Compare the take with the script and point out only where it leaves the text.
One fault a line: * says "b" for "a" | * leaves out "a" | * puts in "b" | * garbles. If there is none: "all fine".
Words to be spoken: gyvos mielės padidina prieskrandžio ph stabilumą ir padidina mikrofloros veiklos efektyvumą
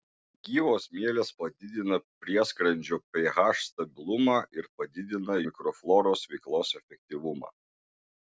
all fine